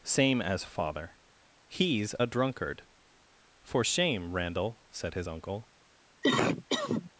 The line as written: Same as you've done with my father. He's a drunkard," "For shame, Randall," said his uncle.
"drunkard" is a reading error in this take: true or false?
false